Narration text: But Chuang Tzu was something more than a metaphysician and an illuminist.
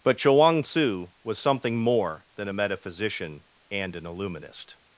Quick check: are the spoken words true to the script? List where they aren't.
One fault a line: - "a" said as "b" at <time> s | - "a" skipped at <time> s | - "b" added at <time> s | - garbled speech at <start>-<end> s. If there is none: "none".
none